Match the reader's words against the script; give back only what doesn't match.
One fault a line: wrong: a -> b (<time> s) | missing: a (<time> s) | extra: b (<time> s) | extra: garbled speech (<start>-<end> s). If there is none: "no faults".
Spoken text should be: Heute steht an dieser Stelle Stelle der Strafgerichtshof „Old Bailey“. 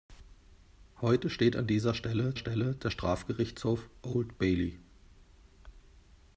no faults